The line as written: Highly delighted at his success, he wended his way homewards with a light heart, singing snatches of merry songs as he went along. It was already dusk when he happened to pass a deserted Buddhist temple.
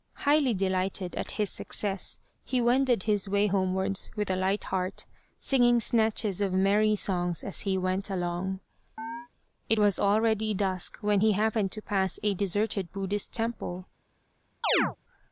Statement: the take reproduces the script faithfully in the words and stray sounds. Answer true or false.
false